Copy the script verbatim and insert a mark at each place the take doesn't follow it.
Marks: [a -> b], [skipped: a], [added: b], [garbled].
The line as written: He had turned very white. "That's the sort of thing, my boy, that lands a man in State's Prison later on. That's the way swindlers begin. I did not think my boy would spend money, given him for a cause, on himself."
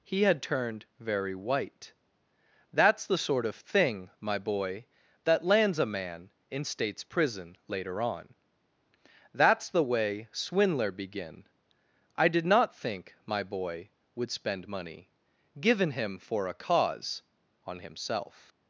He had turned very white. "That's the sort of thing, my boy, that lands a man in State's Prison later on. That's the way [swindlers -> swindler] begin. I did not think my boy would spend money, given him for a cause, on himself."